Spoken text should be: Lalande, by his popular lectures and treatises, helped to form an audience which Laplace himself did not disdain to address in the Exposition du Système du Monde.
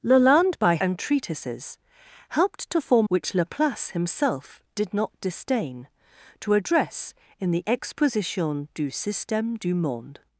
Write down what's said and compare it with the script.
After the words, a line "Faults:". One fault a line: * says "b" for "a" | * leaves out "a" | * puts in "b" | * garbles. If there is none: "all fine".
Lalande, by and treatises, helped to form which Laplace himself did not disdain to address in the Exposition du Système du Monde.
Faults:
* leaves out "his popular lectures"
* leaves out "an audience"